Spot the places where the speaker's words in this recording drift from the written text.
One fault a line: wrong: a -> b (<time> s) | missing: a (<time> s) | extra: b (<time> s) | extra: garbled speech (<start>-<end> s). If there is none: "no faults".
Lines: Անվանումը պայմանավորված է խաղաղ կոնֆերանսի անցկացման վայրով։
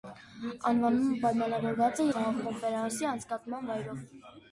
no faults